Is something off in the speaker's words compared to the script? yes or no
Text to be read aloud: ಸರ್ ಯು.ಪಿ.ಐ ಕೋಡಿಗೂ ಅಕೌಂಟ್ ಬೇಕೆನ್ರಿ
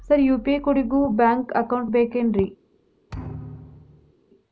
yes